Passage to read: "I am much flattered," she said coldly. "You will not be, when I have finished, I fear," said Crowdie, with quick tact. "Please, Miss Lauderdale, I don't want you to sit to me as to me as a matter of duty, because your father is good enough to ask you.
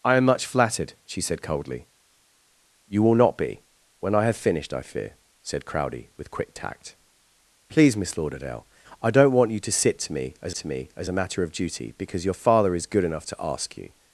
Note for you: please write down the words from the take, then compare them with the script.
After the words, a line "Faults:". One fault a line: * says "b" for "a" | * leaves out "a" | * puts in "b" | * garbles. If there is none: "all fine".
"I am much flattered," she said coldly. "You will not be, when I have finished, I fear," said Crowdie, with quick tact. "Please, Miss Lauderdale, I don't want you to sit to me as to me as a matter of duty, because your father is good enough to ask you.
Faults:
all fine